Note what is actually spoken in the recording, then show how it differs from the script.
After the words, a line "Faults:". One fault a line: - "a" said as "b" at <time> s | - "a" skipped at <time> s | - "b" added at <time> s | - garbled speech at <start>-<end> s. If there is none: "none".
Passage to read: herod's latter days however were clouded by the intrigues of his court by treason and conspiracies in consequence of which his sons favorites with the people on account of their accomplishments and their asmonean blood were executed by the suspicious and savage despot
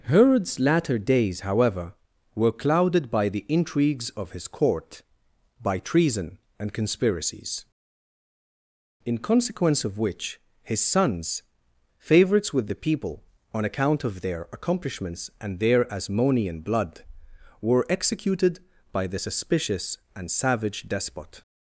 herod's latter days however were clouded by the intrigues of his court by treason and conspiracies in consequence of which his sons favorites with the people on account of their accomplishments and their asmonean blood were executed by the suspicious and savage despot
Faults:
none